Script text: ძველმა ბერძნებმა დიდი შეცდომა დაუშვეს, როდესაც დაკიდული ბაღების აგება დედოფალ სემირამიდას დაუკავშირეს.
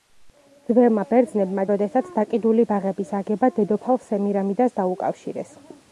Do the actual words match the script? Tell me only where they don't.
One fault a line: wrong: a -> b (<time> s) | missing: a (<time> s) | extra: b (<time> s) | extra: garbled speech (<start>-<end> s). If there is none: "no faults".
missing: დიდი შეცდომა დაუშვეს (1.6 s)